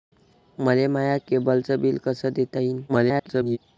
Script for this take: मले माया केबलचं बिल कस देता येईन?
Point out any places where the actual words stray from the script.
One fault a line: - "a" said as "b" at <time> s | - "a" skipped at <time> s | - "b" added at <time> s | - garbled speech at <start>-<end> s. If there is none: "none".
- garbled speech at 2.9-3.6 s